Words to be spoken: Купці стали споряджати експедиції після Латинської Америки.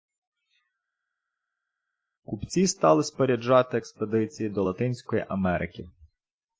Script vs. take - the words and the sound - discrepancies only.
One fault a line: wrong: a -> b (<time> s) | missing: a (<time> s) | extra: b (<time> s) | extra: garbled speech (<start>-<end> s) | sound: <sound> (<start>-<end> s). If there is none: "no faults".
wrong: після -> до (4.5 s)